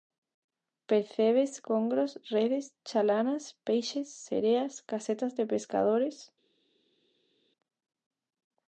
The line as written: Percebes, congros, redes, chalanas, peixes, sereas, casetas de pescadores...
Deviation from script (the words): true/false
false